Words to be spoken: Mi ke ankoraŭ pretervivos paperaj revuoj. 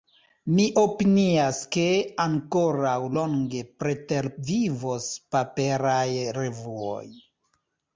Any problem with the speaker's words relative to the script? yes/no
yes